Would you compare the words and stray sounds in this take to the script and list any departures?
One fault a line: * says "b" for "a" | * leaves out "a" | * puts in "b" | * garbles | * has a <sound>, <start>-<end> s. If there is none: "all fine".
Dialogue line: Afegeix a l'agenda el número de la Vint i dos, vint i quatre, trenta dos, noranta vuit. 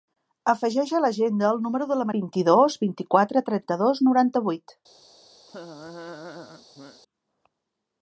* has a laugh, 5.5-7.0 s